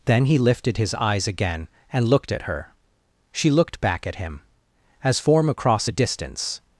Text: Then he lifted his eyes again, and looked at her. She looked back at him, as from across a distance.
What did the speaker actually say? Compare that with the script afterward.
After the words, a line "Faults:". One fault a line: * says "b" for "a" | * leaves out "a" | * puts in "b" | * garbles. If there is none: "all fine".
Then he lifted his eyes again, and looked at her. She looked back at him, as form across a distance.
Faults:
* says "form" for "from"